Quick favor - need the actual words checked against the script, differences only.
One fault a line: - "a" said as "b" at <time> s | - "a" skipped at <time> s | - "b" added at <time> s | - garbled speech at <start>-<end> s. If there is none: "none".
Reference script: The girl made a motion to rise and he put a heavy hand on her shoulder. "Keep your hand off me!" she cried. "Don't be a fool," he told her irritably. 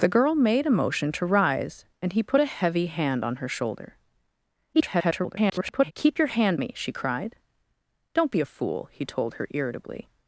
- garbled speech at 4.7-5.9 s
- "off" skipped at 6.6 s